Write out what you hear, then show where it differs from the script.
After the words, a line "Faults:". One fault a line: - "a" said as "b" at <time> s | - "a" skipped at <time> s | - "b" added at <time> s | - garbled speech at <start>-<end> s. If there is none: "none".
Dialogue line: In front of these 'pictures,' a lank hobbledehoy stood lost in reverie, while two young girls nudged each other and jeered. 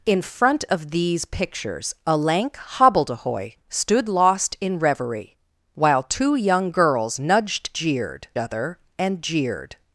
In front of these 'pictures,' a lank hobbledehoy stood lost in reverie, while two young girls nudged jeered other and jeered.
Faults:
- "each" said as "jeered" at 7.7 s